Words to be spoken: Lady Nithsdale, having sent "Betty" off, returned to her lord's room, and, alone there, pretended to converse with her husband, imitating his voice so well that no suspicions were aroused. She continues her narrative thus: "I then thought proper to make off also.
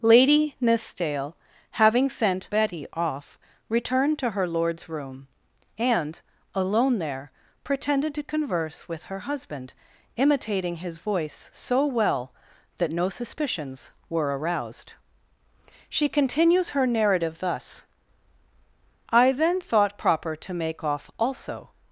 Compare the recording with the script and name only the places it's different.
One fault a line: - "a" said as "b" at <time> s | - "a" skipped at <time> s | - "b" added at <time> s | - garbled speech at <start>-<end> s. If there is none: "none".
none